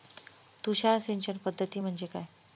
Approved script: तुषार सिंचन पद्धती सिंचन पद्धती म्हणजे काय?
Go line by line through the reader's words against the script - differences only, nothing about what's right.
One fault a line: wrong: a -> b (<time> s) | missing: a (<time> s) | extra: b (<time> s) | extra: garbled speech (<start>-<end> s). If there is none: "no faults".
missing: सिंचन पद्धती (1.8 s)